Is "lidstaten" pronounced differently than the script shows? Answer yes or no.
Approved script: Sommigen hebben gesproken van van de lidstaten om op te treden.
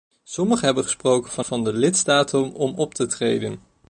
no